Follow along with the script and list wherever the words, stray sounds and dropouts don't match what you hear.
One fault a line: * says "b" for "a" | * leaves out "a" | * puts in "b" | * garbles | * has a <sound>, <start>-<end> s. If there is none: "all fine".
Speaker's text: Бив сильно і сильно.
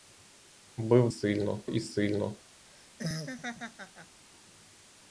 * has a laugh, 2.7-4.2 s